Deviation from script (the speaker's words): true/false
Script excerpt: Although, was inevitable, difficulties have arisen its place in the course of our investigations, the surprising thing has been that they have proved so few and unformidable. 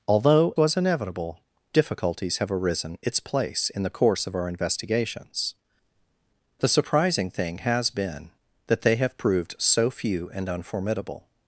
false